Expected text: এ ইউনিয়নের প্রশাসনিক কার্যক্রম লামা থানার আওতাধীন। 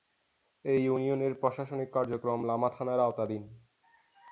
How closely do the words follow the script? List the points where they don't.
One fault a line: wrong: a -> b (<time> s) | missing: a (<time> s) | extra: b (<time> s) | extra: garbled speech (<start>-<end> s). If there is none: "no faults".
no faults